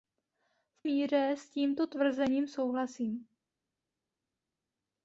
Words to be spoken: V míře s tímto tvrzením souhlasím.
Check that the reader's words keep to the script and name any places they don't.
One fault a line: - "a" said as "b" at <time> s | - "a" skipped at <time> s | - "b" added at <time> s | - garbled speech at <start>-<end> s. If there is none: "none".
none